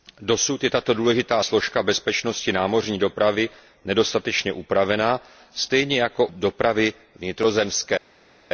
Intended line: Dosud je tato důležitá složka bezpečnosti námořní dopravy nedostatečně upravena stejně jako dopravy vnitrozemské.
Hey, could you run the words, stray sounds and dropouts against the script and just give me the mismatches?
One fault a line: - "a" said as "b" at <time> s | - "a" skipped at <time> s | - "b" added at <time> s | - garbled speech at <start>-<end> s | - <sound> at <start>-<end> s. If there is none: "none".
none